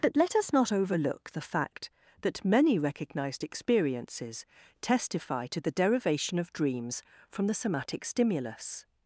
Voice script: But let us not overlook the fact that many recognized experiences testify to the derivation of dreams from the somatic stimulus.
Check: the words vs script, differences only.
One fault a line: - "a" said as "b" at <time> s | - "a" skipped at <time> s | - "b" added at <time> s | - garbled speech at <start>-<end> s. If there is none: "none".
none